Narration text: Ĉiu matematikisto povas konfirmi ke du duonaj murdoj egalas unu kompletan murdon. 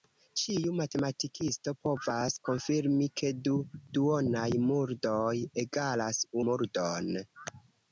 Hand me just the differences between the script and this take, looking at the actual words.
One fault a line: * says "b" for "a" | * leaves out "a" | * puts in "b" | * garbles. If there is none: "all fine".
* leaves out "unu kompletan"